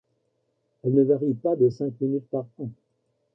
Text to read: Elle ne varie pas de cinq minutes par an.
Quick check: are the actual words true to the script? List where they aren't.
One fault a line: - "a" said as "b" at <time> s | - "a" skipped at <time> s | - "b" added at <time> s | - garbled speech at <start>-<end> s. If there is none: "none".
none